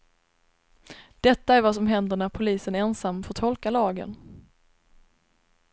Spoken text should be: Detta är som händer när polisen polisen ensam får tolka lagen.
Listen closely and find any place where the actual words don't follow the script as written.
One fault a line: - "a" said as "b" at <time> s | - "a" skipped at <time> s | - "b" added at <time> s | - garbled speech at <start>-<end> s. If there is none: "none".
- "vad" added at 1.6 s
- "polisen" skipped at 2.8 s